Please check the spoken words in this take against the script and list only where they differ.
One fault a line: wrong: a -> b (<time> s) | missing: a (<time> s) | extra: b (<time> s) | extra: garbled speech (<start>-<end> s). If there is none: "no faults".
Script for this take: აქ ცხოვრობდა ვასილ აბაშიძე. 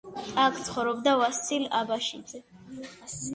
no faults